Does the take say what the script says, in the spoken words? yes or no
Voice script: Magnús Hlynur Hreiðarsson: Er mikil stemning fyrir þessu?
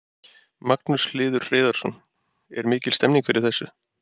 yes